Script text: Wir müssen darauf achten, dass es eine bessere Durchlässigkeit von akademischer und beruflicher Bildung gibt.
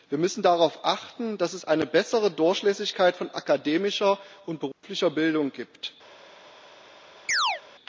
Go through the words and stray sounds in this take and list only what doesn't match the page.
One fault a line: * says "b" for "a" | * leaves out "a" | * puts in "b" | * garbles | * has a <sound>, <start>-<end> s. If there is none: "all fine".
* has a dropout, 4.7-4.8 s
* has a chirp, 7.3-7.6 s